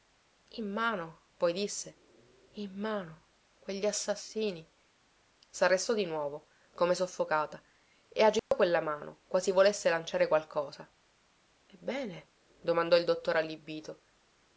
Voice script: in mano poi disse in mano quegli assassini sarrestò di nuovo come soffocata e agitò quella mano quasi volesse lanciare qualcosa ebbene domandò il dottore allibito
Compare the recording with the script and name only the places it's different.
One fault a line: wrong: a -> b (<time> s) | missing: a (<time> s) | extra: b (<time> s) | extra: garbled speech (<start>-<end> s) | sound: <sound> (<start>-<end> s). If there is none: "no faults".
sound: dropout (8.4-8.5 s)